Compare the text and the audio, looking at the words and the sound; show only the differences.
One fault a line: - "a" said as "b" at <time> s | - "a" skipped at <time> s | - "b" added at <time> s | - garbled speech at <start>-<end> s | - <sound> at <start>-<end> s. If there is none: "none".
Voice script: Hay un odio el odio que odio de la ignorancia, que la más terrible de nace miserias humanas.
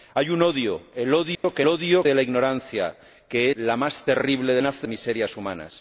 - dropout at 1.3-1.4 s